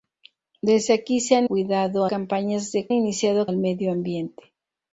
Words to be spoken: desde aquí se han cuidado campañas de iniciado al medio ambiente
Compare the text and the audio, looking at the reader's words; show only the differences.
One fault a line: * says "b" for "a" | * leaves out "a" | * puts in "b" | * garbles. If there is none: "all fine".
all fine